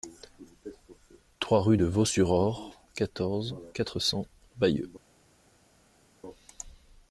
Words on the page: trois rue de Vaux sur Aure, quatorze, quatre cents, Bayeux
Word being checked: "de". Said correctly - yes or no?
yes